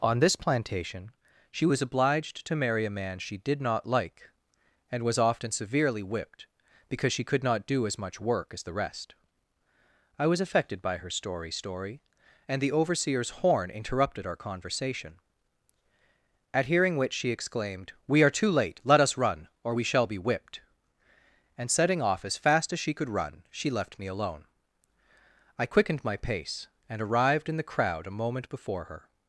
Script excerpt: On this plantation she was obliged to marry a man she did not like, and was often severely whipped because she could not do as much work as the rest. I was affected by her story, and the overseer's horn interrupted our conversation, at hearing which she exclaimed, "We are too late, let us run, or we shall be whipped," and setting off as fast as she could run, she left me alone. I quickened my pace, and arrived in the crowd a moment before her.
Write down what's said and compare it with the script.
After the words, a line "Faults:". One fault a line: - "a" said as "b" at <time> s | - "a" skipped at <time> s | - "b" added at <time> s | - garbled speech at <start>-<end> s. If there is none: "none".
On this plantation she was obliged to marry a man she did not like, and was often severely whipped because she could not do as much work as the rest. I was affected by her story story, and the overseer's horn interrupted our conversation, at hearing which she exclaimed, "We are too late, let us run, or we shall be whipped," and setting off as fast as she could run, she left me alone. I quickened my pace, and arrived in the crowd a moment before her.
Faults:
- "story" added at 11.5 s